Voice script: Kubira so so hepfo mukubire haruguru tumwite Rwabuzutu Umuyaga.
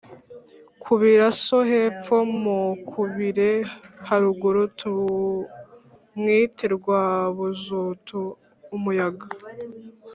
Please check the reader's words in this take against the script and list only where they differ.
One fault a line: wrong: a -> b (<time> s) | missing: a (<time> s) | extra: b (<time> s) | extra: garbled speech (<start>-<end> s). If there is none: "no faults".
missing: so (1.6 s)